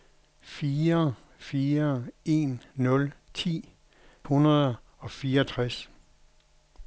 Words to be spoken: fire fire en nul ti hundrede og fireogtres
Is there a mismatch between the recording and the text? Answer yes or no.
no